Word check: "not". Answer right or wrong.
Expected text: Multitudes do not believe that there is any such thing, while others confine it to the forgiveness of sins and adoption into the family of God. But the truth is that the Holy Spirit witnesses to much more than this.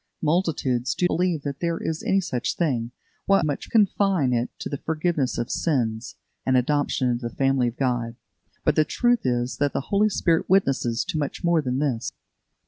wrong